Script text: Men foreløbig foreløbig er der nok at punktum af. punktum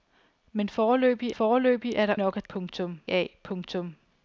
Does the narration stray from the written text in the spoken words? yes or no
no